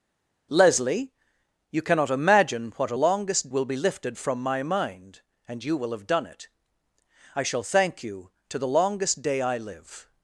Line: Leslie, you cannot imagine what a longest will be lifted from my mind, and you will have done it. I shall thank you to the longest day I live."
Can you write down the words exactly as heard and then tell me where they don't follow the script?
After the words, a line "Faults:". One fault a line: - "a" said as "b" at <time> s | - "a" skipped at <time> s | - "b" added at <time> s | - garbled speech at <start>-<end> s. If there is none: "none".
Leslie, you cannot imagine what a longest will be lifted from my mind, and you will have done it. I shall thank you to the longest day I live."
Faults:
none